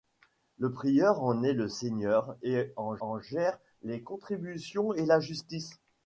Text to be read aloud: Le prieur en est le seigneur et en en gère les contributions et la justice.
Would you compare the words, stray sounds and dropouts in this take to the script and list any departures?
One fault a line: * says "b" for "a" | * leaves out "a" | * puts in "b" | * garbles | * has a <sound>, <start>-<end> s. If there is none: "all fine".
all fine